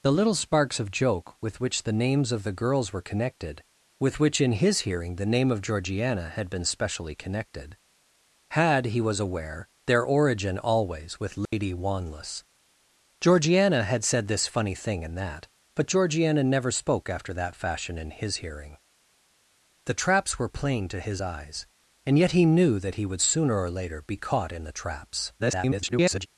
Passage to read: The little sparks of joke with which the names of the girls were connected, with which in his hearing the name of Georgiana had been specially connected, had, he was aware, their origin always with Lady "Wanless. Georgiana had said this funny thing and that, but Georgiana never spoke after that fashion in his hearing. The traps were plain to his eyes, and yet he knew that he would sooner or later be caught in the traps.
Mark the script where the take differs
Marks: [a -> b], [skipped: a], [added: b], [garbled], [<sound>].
The little sparks of joke with which the names of the girls were connected, with which in his hearing the name of Georgiana had been specially connected, had, he was aware, their origin always with Lady [dropout] "Wanless. Georgiana had said this funny thing and that, but Georgiana never spoke after that fashion in his hearing. The traps were plain to his eyes, and yet he knew that he would sooner or later be caught in the traps. [garbled]